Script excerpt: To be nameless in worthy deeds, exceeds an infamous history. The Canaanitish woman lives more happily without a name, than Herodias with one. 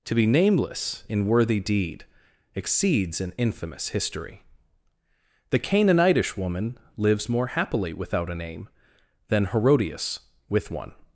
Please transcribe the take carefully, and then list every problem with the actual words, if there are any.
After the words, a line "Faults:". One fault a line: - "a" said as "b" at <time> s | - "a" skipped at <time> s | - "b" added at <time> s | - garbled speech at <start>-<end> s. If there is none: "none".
To be nameless in worthy deed, exceeds an infamous history. The Canaanitish woman lives more happily without a name, than Herodias with one.
Faults:
- "deeds" said as "deed" at 1.6 s